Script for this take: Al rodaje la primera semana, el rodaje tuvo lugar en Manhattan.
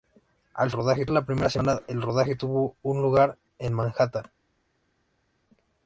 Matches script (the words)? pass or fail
pass